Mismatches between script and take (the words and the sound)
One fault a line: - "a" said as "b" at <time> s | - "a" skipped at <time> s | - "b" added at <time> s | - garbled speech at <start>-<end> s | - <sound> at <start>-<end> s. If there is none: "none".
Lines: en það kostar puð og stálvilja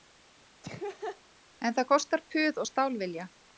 - laugh at 0.6-1.2 s